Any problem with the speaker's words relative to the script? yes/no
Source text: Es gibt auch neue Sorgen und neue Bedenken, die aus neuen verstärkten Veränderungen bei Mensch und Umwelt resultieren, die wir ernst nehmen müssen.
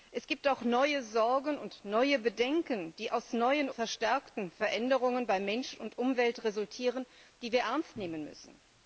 no